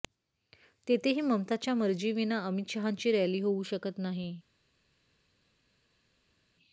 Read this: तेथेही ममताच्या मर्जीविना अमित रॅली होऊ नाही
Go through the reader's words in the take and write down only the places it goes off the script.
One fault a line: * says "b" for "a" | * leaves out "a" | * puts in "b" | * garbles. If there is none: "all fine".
* puts in "शहांची"
* puts in "शकत"